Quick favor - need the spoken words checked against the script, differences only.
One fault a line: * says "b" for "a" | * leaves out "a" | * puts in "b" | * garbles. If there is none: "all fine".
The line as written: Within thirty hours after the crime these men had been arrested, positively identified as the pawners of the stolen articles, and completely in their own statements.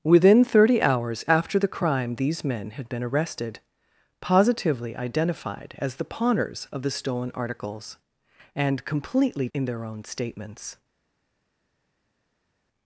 all fine